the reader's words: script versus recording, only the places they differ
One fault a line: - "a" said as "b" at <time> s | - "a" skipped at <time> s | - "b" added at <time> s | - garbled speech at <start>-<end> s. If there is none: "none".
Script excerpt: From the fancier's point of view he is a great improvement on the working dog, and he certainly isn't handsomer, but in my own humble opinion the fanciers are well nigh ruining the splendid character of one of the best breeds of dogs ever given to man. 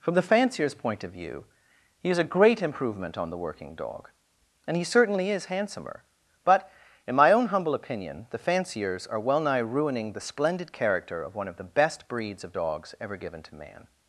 - "isn't" said as "is" at 5.3 s